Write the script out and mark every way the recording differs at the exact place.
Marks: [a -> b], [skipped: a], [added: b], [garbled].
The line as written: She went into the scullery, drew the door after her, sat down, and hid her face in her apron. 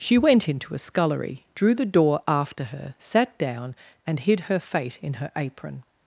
She went into [the -> a] scullery, drew the door after her, sat down, and hid her [face -> fate] in her apron.